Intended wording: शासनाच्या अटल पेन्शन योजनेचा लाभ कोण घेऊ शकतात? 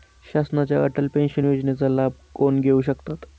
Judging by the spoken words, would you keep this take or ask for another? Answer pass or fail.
pass